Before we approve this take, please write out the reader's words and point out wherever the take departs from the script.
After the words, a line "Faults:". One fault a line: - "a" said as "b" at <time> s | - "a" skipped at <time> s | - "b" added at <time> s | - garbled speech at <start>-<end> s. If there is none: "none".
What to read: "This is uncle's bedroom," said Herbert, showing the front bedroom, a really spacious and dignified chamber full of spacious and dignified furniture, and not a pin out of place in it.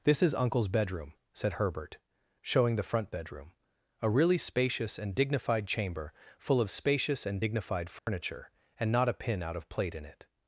"This is uncle's bedroom," said Herbert, showing the front bedroom, a really spacious and dignified chamber full of spacious and dignified furniture, and not a pin out of plate in it.
Faults:
- "place" said as "plate" at 9.7 s